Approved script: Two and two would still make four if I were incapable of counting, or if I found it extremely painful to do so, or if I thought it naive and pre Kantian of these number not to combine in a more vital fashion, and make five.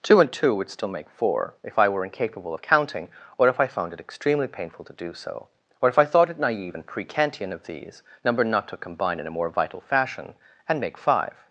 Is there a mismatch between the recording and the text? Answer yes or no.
no